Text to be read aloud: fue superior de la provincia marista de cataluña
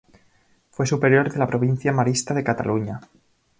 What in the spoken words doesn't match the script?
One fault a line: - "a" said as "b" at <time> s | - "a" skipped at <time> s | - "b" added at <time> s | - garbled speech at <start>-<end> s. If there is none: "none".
none